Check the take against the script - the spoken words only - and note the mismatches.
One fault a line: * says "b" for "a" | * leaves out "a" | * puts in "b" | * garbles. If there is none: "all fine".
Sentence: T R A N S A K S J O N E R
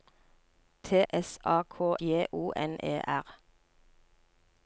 * leaves out "R A N"
* leaves out "S"